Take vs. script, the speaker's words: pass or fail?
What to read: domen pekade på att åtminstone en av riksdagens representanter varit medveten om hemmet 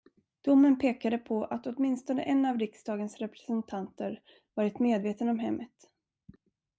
pass